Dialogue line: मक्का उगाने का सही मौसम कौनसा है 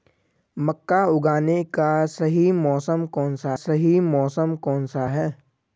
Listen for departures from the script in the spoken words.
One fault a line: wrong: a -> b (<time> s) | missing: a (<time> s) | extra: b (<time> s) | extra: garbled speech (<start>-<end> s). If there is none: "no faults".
extra: सही मौसम कौनसा (3.5 s)